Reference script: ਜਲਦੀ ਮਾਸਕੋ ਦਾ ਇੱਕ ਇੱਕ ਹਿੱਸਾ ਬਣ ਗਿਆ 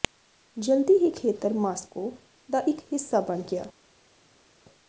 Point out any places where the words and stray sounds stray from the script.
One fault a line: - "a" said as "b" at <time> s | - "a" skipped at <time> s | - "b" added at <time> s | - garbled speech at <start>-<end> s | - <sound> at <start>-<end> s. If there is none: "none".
- "ਹੀ ਖੇਤਰ" added at 0.9 s
- "ਇੱਕ" skipped at 2.8 s